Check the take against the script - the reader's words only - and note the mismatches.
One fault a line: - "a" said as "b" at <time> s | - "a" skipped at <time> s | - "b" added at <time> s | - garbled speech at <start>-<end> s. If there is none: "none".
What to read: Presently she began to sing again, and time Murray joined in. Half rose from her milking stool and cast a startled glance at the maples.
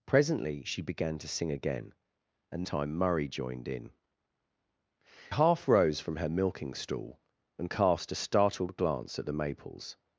none